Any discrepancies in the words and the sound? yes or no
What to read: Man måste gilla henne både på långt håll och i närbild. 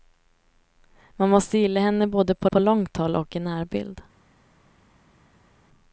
yes